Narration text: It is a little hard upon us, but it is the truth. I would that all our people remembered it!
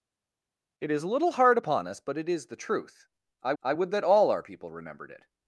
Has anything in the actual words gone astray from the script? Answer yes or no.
yes